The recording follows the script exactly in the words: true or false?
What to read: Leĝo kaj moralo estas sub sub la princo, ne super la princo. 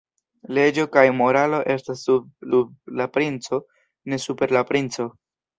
true